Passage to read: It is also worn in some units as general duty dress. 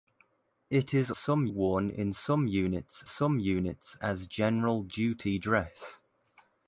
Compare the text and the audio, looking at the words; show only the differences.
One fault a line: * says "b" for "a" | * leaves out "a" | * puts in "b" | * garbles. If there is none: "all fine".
* says "some" for "also"
* puts in "some units"